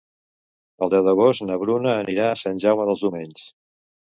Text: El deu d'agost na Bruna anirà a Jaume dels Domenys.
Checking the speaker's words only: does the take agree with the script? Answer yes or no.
no